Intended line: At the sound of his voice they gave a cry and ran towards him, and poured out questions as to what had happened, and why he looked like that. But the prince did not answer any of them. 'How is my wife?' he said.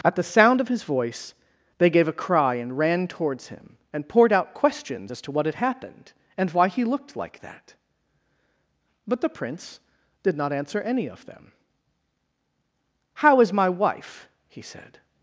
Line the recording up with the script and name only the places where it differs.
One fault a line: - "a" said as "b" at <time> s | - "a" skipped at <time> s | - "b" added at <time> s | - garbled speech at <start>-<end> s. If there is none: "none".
none